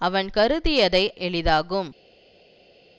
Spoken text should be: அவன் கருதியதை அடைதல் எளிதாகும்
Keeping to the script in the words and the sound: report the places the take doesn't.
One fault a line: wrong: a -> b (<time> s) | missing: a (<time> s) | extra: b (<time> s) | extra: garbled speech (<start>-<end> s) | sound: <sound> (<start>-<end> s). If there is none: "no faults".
missing: அடைதல் (1.0 s)